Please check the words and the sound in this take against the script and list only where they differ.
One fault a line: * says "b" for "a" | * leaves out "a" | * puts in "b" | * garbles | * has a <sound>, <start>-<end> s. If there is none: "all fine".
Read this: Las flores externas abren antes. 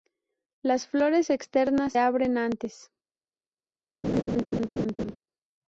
* has a laugh, 4.0-5.2 s